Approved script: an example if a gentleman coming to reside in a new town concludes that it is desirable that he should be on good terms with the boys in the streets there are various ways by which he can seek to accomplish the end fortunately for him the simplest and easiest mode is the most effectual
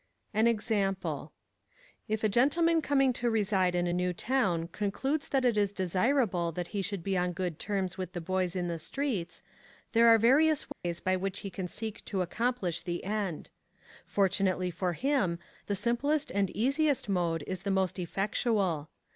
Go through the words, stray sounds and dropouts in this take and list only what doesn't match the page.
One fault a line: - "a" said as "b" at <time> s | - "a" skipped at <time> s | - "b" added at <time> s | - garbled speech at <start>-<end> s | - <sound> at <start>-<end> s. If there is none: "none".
- dropout at 10.7-10.8 s